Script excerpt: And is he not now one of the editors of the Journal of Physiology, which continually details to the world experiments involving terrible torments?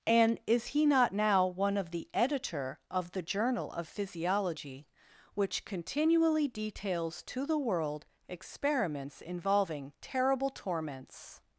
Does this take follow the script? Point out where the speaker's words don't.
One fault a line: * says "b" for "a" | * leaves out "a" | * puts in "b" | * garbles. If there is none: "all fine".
* says "editor" for "editors"